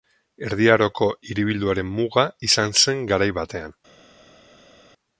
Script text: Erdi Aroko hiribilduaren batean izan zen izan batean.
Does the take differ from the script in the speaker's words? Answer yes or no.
yes